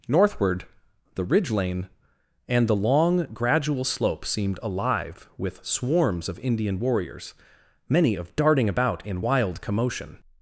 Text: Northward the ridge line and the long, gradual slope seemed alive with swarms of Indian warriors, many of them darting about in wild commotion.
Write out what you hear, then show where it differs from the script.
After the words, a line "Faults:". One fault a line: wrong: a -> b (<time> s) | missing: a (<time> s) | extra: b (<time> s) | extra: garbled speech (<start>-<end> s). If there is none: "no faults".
Northward the ridge lane and the long, gradual slope seemed alive with swarms of Indian warriors, many of darting about in wild commotion.
Faults:
wrong: line -> lane (1.5 s)
missing: them (8.3 s)